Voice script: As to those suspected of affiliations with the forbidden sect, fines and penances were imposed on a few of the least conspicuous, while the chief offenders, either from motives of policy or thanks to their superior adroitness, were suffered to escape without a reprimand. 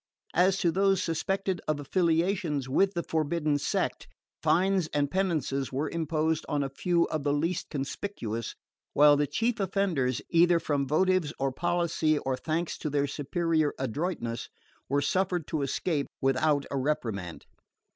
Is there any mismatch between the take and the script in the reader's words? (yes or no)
no